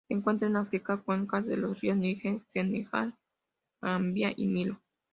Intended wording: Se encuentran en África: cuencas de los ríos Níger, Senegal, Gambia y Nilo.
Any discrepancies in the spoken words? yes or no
no